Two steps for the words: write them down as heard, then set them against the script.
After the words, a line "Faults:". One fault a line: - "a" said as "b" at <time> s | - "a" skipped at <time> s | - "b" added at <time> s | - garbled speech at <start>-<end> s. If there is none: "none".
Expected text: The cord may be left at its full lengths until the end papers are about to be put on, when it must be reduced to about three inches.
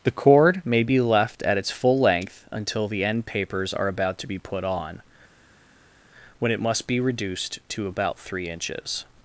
The cord may be left at its full length until the end papers are about to be put on, when it must be reduced to about three inches.
Faults:
- "lengths" said as "length" at 2.0 s